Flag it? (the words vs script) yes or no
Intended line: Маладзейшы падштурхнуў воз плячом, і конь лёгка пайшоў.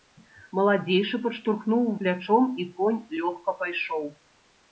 yes